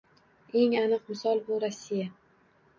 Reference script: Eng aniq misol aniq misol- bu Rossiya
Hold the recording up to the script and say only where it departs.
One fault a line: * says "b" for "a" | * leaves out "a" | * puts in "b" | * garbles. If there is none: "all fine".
* leaves out "aniq misol"